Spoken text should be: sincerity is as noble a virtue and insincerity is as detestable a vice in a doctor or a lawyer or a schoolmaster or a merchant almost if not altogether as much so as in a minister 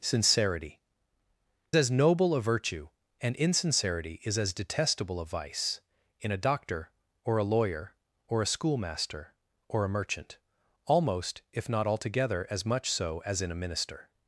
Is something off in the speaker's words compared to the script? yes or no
yes